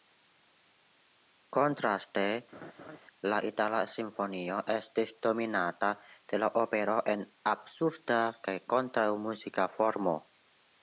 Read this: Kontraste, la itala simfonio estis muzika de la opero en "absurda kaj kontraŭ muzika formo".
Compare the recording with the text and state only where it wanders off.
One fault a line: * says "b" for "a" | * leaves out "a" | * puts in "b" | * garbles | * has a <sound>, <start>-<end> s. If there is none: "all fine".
* has a laugh, 2.5-3.0 s
* says "dominata" for "muzika"